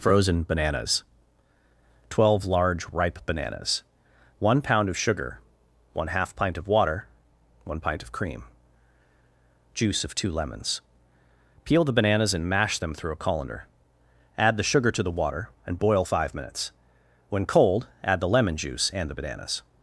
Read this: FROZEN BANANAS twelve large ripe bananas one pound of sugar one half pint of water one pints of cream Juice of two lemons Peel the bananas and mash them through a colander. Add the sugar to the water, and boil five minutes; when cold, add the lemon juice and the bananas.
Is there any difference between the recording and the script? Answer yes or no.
yes